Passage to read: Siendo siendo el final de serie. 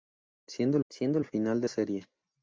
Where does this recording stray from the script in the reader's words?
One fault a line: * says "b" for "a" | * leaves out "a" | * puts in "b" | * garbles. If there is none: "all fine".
all fine